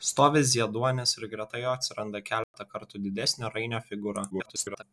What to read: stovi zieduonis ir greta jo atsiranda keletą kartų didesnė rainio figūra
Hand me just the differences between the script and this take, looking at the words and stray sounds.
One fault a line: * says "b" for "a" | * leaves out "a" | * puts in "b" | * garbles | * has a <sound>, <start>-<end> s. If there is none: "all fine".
* has a dropout, 2.4-2.5 s
* garbles